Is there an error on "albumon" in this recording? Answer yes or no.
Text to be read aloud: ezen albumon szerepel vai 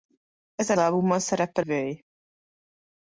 no